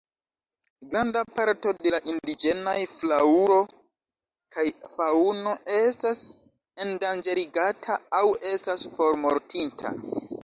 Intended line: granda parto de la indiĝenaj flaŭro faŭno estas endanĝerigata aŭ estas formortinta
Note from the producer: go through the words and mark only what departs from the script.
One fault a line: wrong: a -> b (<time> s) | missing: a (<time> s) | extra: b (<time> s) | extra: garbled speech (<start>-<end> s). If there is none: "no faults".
extra: kaj (4.5 s)